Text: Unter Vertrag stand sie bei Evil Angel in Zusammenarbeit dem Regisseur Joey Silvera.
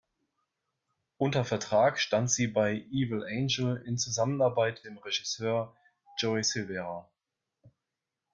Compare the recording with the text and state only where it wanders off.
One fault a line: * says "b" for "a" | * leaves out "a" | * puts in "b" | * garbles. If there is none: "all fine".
all fine